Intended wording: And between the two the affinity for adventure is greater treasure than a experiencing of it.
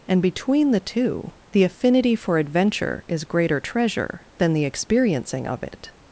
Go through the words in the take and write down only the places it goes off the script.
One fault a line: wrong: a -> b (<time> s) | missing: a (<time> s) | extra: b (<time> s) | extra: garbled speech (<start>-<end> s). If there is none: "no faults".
wrong: a -> the (4.5 s)